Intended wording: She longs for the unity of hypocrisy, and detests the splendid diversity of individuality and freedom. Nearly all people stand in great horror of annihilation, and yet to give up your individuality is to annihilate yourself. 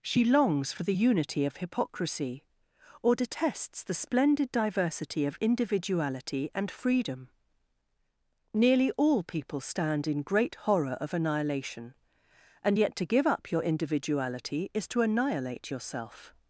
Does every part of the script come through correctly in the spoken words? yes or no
no